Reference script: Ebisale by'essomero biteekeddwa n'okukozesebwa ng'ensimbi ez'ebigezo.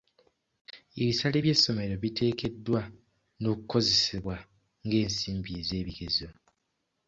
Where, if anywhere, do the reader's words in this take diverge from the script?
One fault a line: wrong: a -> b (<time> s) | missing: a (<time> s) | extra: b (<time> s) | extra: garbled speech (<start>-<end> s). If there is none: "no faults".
no faults